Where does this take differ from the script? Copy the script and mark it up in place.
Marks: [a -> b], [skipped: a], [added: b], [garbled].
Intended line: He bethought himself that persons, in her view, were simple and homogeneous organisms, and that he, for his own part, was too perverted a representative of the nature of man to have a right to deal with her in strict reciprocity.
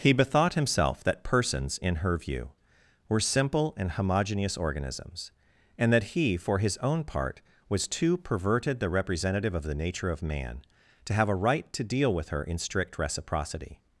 He bethought himself that persons, in her view, were simple and homogeneous organisms, and that he, for his own part, was too perverted [a -> the] representative of the nature of man to have a right to deal with her in strict reciprocity.